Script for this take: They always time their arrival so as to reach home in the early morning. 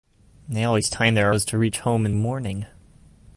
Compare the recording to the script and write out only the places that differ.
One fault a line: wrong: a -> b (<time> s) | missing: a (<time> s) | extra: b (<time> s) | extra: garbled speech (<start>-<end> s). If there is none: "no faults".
missing: arrival so (1.4 s)
missing: the early (2.1 s)